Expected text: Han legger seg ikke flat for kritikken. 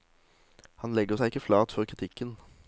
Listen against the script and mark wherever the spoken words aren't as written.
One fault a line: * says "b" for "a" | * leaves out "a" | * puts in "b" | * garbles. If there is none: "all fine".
all fine